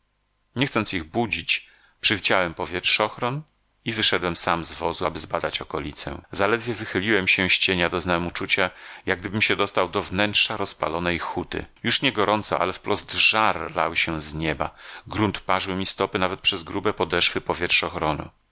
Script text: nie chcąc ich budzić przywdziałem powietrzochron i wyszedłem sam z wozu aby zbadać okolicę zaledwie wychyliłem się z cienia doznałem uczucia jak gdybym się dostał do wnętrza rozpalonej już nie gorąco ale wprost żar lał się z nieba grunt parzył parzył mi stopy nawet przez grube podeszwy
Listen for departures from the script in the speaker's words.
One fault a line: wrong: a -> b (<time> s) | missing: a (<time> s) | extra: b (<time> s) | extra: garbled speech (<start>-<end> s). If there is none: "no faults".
extra: huty (11.2 s)
missing: parzył (15.8 s)